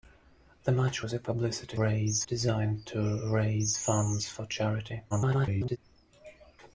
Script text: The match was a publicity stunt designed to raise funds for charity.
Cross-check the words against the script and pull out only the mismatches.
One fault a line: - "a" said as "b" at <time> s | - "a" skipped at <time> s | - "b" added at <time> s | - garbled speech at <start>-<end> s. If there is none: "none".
- "stunt" said as "raise" at 1.8 s
- garbled speech at 5.1-5.8 s